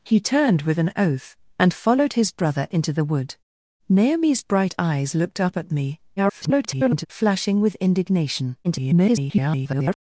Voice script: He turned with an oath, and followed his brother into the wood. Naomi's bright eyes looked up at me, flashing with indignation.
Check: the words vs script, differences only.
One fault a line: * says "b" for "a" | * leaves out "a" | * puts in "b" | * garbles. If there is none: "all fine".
* garbles
* garbles